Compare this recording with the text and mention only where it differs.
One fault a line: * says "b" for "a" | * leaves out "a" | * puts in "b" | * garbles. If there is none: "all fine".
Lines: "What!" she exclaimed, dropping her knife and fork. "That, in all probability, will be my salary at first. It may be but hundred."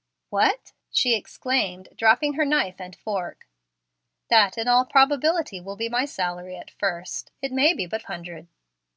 all fine